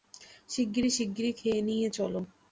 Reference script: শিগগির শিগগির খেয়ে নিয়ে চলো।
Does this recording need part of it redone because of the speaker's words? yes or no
no